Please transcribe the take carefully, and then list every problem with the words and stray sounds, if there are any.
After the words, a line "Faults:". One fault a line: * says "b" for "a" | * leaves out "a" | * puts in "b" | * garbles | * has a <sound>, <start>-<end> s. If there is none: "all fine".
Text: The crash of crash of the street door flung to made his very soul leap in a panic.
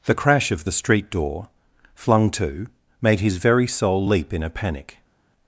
The crash of the street door flung to made his very soul leap in a panic.
Faults:
* leaves out "crash of"